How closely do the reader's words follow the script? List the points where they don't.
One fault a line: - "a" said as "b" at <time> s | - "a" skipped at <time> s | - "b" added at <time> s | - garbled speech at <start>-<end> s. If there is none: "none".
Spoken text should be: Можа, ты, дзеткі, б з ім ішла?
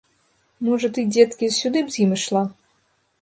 - "сюды" added at 1.6 s